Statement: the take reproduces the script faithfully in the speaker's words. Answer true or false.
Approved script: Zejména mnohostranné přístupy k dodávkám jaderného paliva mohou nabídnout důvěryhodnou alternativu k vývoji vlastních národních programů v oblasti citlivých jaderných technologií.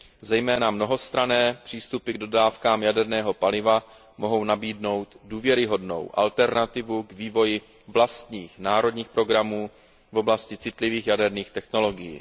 true